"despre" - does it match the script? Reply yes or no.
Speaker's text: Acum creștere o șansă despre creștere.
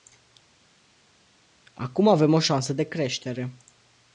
no